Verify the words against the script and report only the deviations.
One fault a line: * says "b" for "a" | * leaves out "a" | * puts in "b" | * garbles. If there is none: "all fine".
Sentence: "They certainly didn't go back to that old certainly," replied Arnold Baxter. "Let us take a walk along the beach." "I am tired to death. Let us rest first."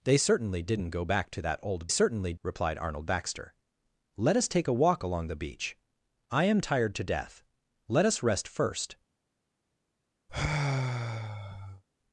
all fine